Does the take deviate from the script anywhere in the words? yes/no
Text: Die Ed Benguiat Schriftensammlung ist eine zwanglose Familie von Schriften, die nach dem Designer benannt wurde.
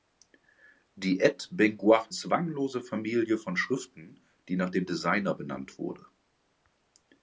yes